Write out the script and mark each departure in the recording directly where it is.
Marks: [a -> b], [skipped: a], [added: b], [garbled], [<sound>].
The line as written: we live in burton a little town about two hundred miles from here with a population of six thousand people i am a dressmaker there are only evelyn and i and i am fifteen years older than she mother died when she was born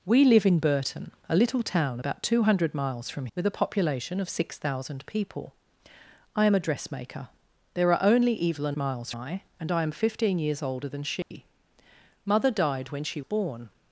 we live in burton a little town about two hundred miles from [skipped: here] with a population of six thousand people i am a dressmaker there are only evelyn [and -> miles] i and i am fifteen years older than she [dropout] mother died when she [skipped: was] born